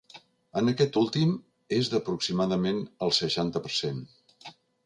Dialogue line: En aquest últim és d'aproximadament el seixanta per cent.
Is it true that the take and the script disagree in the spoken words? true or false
false